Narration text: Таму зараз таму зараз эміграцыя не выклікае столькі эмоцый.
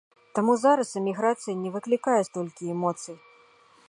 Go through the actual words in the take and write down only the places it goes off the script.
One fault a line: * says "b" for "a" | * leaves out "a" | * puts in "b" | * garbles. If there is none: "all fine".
* leaves out "таму зараз"